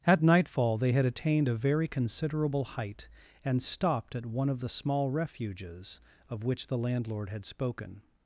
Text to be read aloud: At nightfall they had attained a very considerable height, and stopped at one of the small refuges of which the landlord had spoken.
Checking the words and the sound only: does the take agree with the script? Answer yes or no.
yes